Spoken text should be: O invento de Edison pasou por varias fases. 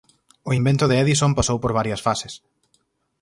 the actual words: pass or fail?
pass